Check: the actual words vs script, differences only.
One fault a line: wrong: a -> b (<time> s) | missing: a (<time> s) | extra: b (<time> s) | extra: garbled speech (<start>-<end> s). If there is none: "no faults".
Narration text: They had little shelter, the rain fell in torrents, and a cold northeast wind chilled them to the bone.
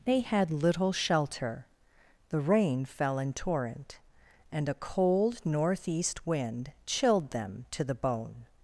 wrong: torrents -> torrent (3.3 s)